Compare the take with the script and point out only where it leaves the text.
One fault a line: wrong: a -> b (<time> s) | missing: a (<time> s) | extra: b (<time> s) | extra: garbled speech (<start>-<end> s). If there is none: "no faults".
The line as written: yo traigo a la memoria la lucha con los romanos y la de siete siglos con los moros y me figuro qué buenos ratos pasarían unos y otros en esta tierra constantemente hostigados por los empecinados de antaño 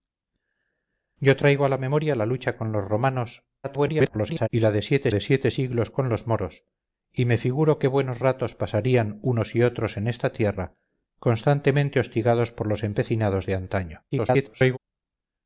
extra: garbled speech (3.6-4.5 s)
extra: de siete (5.1 s)
extra: garbled speech (14.1-14.8 s)